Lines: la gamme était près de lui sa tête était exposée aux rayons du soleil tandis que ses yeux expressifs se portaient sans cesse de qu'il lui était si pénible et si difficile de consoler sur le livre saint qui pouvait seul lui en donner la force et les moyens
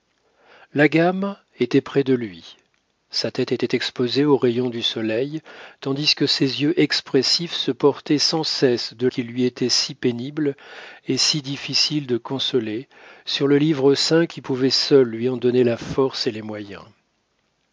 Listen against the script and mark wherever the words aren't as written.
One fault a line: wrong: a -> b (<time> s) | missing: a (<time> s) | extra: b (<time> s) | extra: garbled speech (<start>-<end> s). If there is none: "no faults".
no faults